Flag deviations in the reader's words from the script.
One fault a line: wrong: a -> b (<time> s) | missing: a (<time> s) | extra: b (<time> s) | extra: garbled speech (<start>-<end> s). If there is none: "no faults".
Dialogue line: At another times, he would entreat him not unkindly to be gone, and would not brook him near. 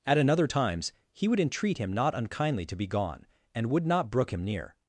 no faults